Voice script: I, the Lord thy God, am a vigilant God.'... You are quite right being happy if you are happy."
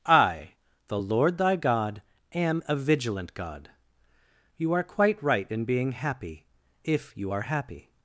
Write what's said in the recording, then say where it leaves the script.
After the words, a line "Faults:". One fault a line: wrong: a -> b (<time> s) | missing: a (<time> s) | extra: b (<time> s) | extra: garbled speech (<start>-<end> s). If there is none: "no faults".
I, the Lord thy God, am a vigilant God.'... You are quite right in being happy if you are happy."
Faults:
extra: in (5.5 s)